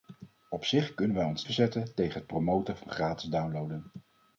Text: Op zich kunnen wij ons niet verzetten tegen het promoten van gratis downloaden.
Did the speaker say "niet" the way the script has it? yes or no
no